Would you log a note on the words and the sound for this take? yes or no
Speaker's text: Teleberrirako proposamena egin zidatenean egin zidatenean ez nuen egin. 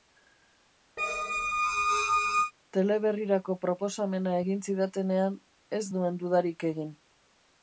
yes